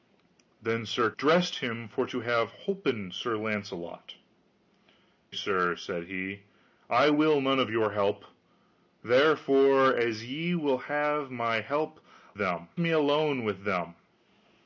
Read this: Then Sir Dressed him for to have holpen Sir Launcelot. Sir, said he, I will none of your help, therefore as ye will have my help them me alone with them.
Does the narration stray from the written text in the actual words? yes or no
no